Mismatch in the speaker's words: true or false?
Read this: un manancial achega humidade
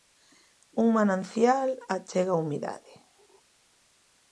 false